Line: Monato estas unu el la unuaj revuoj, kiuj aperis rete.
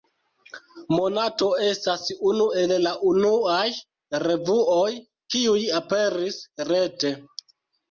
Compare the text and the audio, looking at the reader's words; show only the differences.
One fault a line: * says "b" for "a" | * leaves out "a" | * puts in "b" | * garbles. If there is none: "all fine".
all fine